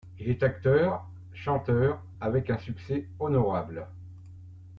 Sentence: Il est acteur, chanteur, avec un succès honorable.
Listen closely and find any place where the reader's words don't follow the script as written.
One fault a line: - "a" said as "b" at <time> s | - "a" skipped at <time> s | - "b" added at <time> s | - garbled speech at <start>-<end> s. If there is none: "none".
none